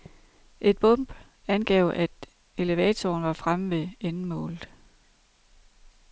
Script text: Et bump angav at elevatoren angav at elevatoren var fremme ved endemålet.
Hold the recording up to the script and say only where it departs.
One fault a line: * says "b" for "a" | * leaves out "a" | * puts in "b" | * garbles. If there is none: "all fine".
* leaves out "angav at elevatoren"